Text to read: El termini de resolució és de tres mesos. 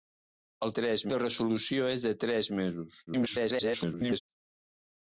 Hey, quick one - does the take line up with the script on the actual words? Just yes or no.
no